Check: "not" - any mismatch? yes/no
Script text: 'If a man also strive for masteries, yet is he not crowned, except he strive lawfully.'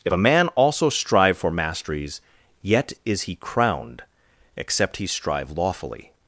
yes